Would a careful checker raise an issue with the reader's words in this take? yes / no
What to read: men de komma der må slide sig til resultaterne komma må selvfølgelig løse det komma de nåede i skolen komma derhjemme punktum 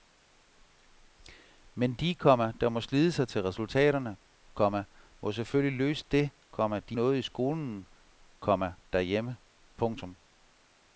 no